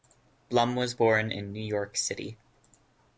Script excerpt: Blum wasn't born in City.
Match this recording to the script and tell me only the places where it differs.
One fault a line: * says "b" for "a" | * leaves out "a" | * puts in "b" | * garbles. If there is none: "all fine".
* says "was" for "wasn't"
* puts in "New York"